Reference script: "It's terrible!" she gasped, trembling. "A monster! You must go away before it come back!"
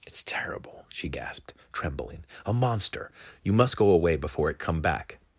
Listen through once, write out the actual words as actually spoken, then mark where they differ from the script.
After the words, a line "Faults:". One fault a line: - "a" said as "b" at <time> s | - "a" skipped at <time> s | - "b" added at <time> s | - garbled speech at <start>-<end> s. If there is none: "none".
"It's terrible!" she gasped, trembling. "A monster! You must go away before it come back!"
Faults:
none